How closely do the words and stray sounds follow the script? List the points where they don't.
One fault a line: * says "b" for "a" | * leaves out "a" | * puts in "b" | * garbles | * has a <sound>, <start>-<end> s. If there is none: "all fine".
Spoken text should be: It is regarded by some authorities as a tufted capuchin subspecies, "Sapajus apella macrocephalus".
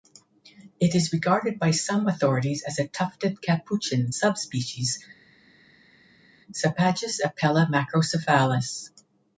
all fine